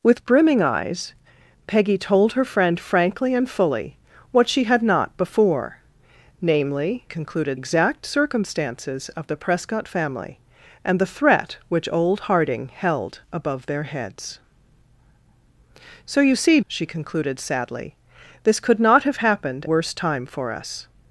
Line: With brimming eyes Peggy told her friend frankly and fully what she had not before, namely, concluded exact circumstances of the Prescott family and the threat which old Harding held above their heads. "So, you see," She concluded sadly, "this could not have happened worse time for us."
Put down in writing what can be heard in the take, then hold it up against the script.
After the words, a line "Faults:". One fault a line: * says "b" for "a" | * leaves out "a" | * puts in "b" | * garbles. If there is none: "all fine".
With brimming eyes Peggy told her friend frankly and fully what she had not before, namely, concluded exact circumstances of the Prescott family and the threat which old Harding held above their heads. "So, you see," She concluded sadly, "this could not have happened worse time for us."
Faults:
all fine